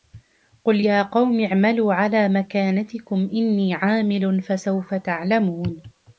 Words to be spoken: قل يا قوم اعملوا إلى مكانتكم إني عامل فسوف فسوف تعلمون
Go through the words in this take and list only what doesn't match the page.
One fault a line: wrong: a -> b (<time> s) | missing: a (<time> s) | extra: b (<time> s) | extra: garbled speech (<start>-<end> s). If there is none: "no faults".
wrong: إلى -> على (1.9 s)
missing: فسوف (4.9 s)